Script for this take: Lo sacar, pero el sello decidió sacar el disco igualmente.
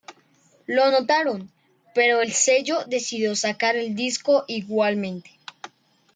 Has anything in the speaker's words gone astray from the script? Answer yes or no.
yes